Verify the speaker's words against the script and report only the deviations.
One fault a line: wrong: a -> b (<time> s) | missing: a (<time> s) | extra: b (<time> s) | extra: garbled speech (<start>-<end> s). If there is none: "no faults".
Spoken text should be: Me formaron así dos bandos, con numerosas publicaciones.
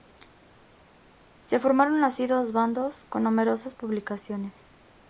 wrong: Me -> Se (1.4 s)